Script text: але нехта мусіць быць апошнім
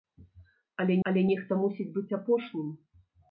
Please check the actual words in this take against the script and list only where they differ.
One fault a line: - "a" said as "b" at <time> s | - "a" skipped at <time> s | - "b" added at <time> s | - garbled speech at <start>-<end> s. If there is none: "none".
- "але" added at 1.1 s